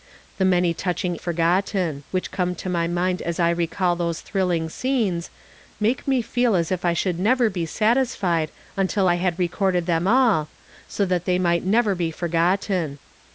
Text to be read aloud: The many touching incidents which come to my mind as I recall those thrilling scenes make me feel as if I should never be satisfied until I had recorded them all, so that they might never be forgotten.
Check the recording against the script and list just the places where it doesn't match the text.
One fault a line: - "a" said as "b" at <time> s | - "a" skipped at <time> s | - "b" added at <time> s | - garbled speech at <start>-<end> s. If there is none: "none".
- "incidents" said as "forgotten" at 1.2 s